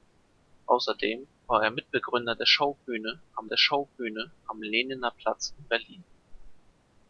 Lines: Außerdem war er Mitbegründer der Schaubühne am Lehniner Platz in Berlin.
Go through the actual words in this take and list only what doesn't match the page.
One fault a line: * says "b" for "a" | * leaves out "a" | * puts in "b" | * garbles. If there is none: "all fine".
* puts in "der Schaubühne am"